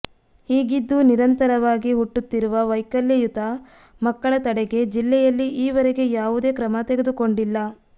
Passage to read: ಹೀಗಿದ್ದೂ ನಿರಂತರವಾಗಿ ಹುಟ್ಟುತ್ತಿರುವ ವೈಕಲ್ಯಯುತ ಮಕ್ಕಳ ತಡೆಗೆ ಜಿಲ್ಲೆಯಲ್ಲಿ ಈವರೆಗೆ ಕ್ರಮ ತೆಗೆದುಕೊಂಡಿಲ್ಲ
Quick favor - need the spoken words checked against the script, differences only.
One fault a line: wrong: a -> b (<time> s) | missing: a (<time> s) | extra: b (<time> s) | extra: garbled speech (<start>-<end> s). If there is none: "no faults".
extra: ಯಾವುದೇ (6.1 s)